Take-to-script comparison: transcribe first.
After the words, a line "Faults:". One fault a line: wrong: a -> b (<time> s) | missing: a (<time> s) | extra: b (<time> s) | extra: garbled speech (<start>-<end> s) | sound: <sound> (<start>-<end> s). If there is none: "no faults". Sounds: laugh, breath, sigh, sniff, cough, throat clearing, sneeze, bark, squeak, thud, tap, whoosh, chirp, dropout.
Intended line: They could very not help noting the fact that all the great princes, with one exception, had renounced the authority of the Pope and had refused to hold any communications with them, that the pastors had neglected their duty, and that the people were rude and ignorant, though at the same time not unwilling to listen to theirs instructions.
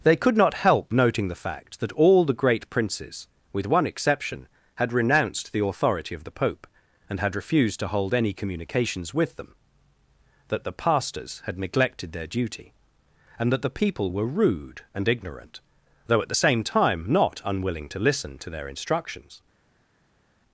They could not help noting the fact that all the great princes, with one exception, had renounced the authority of the Pope and had refused to hold any communications with them, that the pastors had neglected their duty, and that the people were rude and ignorant, though at the same time not unwilling to listen to their instructions.
Faults:
missing: very (0.3 s)
wrong: theirs -> their (18.5 s)